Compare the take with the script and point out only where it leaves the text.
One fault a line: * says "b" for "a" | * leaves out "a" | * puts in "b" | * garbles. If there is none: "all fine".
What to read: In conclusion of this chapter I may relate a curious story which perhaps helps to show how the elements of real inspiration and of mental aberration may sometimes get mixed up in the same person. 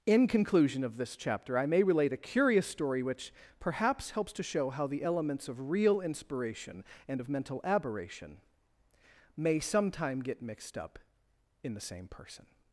* says "sometime" for "sometimes"